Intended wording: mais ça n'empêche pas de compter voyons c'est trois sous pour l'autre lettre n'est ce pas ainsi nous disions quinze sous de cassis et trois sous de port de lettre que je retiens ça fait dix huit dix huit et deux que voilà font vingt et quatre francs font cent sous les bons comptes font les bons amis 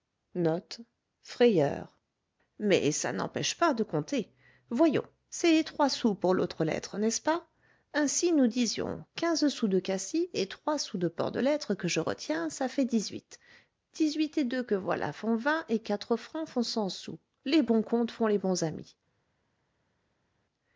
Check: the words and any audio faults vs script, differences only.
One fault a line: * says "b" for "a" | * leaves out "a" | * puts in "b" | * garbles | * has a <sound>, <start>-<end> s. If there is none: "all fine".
all fine